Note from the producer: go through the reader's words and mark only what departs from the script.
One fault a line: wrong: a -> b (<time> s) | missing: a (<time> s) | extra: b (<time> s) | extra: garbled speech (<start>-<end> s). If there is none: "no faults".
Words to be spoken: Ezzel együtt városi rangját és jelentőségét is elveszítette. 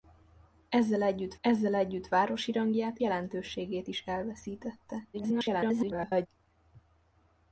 extra: ezzel együtt (1.4 s)
missing: és (3.0 s)
extra: garbled speech (5.1-6.3 s)